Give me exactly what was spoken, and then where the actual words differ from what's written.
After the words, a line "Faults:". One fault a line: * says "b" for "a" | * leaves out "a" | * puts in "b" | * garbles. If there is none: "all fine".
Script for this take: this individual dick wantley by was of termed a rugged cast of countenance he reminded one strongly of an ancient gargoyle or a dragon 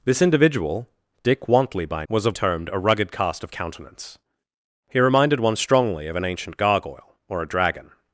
this individual dick wantley by was of termed a rugged cast of countenance he reminded one strongly of an ancient gargoyle or a dragon
Faults:
all fine